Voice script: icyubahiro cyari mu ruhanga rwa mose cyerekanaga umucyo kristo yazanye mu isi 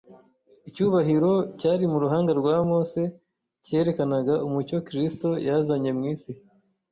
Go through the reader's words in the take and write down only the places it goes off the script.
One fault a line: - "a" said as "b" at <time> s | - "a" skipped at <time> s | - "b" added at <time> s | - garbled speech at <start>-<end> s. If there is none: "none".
none